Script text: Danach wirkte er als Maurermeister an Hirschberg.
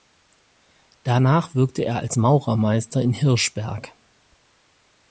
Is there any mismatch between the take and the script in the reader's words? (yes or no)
yes